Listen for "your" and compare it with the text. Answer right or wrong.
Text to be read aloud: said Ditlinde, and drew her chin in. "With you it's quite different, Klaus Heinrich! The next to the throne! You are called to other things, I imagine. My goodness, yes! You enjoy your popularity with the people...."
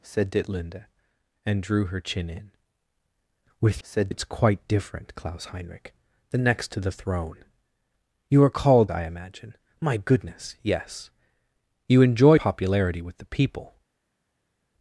wrong